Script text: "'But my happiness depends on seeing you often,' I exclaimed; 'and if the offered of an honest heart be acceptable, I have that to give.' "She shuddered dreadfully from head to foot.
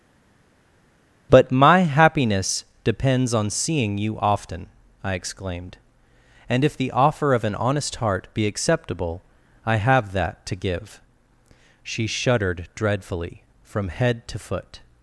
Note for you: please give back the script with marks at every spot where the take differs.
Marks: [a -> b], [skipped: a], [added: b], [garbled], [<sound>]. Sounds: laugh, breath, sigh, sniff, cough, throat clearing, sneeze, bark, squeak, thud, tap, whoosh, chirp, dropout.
"'But my happiness depends on seeing you often,' I exclaimed; 'and if the [offered -> offer] of an honest heart be acceptable, I have that to give.' "She shuddered dreadfully from head to foot.